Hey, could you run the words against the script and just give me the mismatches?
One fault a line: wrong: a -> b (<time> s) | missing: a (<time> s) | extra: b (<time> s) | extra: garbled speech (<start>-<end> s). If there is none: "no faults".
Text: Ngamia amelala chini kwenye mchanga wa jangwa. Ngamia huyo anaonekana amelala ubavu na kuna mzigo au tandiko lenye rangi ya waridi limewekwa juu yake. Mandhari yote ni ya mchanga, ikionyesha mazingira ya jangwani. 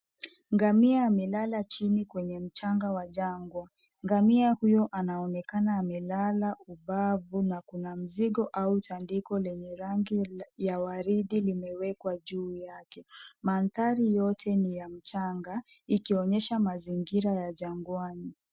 no faults